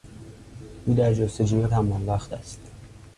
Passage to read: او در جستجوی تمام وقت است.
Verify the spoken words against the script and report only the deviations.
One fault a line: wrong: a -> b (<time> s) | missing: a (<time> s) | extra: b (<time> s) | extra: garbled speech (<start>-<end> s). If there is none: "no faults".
no faults